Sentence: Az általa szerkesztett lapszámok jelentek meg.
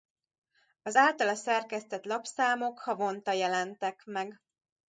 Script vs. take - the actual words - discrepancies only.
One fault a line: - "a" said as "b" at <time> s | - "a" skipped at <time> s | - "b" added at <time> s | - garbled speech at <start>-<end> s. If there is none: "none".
- "havonta" added at 2.8 s